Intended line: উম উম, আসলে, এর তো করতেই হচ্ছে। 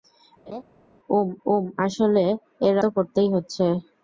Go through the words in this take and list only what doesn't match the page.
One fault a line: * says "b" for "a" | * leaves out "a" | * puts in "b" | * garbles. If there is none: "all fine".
all fine